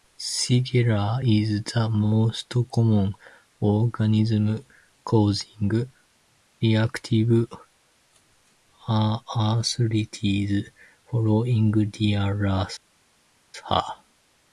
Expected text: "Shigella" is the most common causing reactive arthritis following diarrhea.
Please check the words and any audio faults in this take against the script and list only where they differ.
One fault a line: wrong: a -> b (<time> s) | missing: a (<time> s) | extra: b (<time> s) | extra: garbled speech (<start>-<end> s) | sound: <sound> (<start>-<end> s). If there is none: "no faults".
extra: organism (3.6 s)